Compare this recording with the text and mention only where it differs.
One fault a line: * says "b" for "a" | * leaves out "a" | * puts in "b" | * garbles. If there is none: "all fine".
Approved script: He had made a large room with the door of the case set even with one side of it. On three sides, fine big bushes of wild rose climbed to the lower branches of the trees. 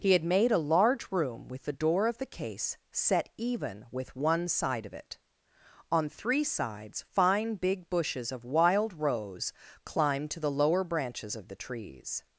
all fine